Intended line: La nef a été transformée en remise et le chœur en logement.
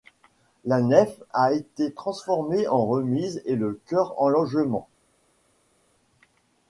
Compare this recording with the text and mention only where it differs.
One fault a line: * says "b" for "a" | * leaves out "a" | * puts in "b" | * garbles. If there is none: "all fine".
all fine